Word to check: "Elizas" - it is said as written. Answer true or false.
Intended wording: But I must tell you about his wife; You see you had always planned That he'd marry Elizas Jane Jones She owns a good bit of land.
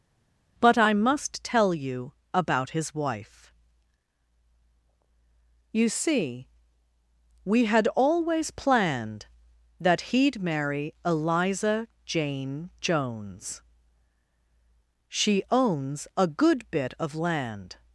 false